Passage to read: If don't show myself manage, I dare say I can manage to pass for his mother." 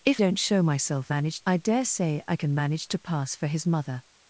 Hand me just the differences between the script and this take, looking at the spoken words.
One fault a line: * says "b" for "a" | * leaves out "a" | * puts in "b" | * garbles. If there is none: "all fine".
all fine